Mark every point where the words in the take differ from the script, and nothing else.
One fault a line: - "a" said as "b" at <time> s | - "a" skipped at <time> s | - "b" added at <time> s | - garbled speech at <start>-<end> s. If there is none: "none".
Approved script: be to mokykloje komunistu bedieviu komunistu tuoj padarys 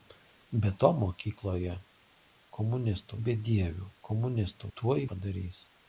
none